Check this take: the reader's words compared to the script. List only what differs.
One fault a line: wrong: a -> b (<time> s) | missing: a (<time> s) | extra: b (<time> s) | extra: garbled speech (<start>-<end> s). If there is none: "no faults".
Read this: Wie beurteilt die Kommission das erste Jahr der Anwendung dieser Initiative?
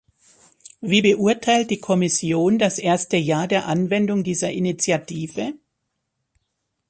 no faults